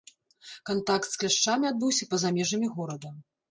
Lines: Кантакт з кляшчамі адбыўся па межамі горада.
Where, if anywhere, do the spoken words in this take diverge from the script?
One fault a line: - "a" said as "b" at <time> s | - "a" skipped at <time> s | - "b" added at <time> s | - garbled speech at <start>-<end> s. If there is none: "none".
- "за" added at 2.3 s